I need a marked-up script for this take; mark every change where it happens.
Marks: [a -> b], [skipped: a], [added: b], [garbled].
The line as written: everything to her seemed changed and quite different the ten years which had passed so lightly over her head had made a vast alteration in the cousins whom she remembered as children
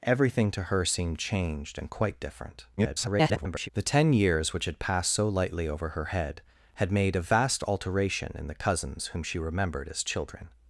everything to her seemed changed and quite different [garbled] the ten years which had passed so lightly over her head had made a vast alteration in the cousins whom she remembered as children